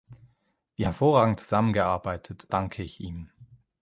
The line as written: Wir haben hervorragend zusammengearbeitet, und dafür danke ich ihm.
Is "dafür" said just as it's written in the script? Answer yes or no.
no